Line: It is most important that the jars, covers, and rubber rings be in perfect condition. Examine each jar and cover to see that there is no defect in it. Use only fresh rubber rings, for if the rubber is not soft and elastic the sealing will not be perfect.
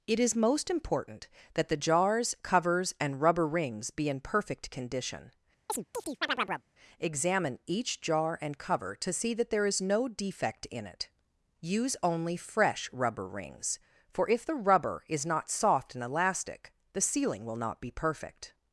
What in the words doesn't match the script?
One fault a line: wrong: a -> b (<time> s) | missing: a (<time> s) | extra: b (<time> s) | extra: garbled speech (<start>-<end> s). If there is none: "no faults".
no faults